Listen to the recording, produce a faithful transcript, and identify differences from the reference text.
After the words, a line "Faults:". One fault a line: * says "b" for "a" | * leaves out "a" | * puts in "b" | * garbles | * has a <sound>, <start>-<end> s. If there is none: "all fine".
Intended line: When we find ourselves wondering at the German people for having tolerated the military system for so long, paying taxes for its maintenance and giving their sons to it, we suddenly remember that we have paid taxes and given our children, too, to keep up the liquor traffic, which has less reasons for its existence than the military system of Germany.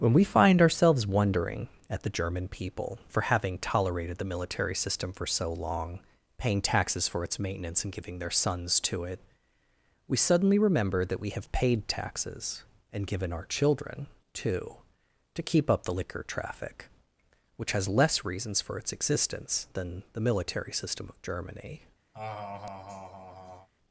When we find ourselves wondering at the German people for having tolerated the military system for so long, paying taxes for its maintenance and giving their sons to it, we suddenly remember that we have paid taxes and given our children, too, to keep up the liquor traffic, which has less reasons for its existence than the military system of Germany.
Faults:
* has a laugh, 22.1-23.7 s